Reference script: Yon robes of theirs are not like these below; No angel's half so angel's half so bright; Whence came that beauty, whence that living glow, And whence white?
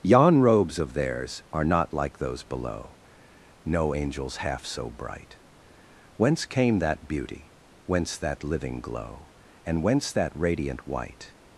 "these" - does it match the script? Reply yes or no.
no